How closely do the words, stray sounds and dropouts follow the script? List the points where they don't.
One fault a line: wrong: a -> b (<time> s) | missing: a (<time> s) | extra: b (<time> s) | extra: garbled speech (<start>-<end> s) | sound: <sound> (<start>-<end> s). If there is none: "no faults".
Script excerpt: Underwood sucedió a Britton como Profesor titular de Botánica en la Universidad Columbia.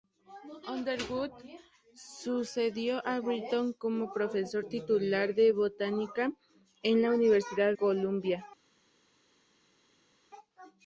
no faults